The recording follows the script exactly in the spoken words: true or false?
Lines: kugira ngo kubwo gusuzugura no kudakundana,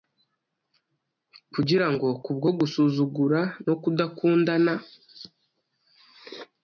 true